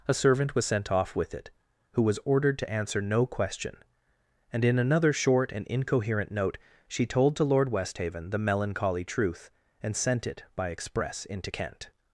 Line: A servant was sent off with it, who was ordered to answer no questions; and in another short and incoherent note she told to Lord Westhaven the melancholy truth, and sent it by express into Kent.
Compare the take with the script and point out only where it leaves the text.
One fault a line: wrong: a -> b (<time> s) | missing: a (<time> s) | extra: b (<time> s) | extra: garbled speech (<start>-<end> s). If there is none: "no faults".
wrong: questions -> question (3.2 s)